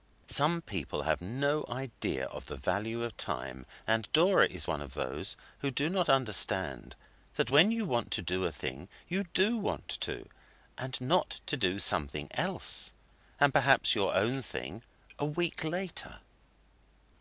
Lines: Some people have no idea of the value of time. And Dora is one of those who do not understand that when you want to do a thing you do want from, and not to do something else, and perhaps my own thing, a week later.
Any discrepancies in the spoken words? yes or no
yes